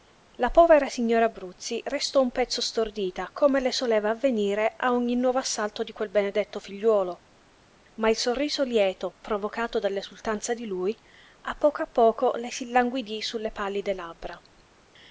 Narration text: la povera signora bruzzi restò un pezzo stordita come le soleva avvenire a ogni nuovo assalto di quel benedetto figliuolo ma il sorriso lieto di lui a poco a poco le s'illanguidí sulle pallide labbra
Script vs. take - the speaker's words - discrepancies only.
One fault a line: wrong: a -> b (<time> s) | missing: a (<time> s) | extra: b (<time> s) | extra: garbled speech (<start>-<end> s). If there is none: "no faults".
extra: provocato dall'esultanza (9.2 s)